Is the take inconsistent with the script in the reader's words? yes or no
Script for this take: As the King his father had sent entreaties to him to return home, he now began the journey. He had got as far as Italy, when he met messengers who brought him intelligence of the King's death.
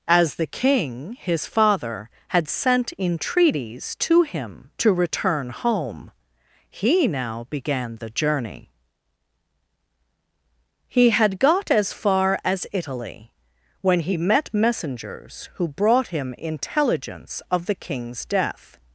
no